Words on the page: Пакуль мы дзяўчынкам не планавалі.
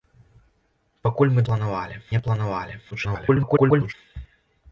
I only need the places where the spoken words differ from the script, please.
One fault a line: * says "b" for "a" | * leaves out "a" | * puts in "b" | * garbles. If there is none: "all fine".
* says "планавалі" for "дзяўчынкам"
* garbles